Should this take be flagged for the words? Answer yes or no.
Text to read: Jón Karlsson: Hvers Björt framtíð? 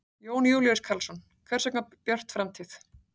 yes